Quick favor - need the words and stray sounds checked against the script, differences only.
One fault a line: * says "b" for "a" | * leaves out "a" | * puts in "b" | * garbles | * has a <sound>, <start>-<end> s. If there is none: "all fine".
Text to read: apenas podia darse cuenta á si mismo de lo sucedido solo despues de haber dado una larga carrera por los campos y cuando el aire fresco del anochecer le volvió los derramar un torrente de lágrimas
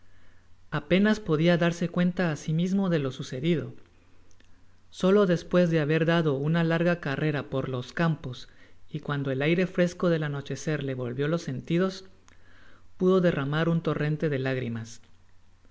* puts in "sentidos pudo"